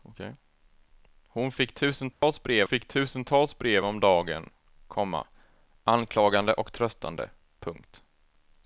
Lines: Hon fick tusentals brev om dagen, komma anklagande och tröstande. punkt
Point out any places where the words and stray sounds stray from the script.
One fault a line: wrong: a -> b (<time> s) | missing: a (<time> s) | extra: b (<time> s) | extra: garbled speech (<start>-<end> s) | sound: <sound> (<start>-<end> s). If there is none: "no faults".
sound: dropout (2.1-2.2 s)
extra: fick tusentals brev (2.6 s)